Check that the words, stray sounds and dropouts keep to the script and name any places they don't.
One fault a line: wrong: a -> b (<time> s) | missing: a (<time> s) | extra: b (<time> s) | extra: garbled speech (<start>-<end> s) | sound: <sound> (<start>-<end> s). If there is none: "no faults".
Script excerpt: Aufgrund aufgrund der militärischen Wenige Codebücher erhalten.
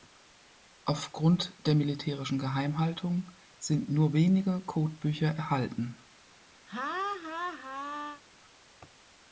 missing: aufgrund (1.6 s)
extra: Geheimhaltung sind nur (2.4 s)
sound: laugh (6.7-8.2 s)